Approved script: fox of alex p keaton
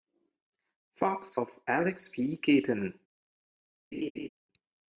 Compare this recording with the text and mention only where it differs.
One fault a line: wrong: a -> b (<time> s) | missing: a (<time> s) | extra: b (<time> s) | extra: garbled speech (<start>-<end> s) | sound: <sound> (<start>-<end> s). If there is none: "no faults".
sound: laugh (3.9-4.3 s)